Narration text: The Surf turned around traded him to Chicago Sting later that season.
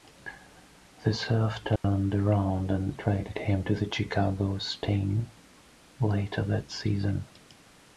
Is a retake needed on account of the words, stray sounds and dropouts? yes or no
yes